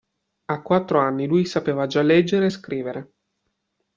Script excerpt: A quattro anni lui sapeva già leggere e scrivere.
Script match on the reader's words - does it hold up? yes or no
yes